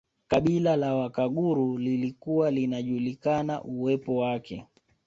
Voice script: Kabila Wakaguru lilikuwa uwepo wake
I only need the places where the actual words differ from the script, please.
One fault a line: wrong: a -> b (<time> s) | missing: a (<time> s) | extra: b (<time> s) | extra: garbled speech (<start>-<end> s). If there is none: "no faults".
extra: la (0.8 s)
extra: linajulikana (2.5 s)